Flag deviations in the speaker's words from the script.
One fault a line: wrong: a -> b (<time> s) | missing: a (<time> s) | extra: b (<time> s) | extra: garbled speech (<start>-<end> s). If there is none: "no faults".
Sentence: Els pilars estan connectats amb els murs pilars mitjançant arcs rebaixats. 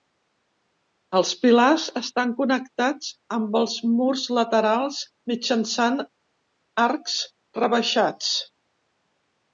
wrong: pilars -> laterals (4.4 s)